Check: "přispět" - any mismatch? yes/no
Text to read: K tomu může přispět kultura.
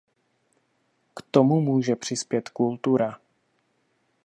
no